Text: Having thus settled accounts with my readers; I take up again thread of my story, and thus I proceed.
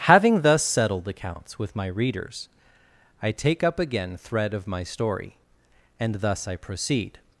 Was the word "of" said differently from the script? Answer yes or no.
no